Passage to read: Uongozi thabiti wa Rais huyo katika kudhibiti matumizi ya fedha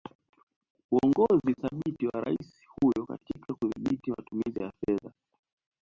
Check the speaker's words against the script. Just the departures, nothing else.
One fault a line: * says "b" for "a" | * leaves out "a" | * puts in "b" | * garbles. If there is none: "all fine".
all fine